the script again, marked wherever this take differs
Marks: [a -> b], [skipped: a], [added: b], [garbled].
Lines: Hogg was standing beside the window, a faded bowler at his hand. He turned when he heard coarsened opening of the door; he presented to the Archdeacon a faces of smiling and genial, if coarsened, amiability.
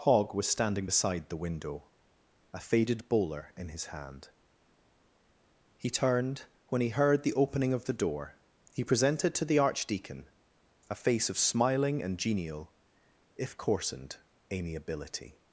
Hogg was standing beside the window, a faded bowler [at -> in] his hand. He turned when he heard [coarsened -> the] opening of the door; he presented to the Archdeacon a [faces -> face] of smiling and genial, if coarsened, amiability.